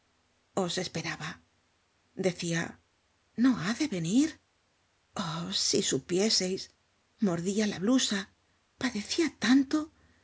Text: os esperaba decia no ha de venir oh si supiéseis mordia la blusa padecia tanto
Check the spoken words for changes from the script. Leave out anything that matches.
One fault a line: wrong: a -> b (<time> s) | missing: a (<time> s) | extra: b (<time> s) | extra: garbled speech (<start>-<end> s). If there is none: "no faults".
no faults